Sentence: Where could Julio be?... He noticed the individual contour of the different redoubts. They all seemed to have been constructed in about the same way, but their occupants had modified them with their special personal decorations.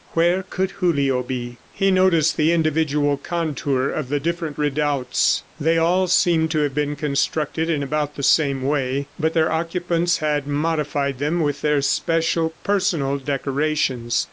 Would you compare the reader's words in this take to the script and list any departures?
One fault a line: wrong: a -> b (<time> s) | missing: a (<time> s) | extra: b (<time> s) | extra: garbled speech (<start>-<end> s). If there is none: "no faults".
no faults